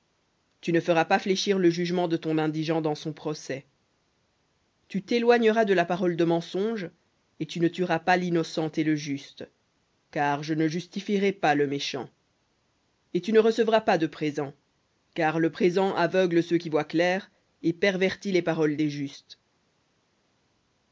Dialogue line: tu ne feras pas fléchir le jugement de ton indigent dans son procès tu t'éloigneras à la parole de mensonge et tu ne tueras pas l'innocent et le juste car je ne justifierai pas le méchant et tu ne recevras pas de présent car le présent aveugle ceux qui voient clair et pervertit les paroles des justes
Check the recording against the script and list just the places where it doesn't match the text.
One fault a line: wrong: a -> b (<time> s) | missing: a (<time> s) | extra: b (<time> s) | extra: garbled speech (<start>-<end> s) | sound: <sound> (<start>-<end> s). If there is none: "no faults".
wrong: à -> de (5.6 s)